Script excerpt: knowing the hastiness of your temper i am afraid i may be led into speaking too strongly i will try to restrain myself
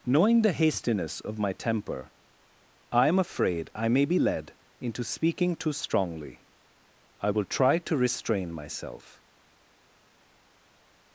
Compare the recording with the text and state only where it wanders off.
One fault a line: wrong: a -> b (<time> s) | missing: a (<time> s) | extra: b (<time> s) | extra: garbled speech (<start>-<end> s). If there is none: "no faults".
wrong: your -> my (1.4 s)